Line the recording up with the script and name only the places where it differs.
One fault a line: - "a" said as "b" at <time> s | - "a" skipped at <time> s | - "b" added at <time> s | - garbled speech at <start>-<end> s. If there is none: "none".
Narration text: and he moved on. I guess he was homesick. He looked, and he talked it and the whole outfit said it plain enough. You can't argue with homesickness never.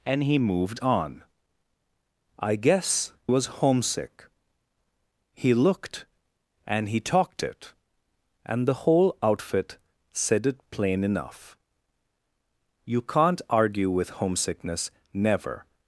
- "he" skipped at 3.1 s